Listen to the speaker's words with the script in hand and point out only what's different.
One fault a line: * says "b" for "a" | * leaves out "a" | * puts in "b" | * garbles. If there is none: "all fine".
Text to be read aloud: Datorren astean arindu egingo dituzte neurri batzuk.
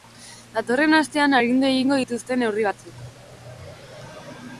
all fine